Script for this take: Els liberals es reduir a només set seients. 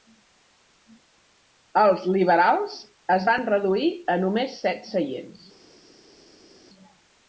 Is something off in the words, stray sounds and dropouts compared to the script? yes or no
yes